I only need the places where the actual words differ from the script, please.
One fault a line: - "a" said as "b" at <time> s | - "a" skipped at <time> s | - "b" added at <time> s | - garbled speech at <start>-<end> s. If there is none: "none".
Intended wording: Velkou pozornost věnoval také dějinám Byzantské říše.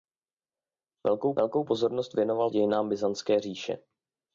- "velkou" added at 1.4 s
- "také" skipped at 2.5 s